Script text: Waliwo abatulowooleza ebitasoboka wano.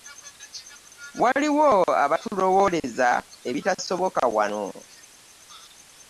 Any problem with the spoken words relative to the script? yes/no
no